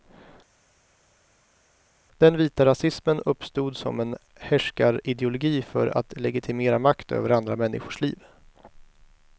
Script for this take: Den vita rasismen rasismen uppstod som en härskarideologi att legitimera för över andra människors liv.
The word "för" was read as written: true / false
false